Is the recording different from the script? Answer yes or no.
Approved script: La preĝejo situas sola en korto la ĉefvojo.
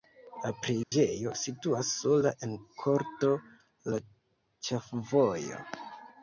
no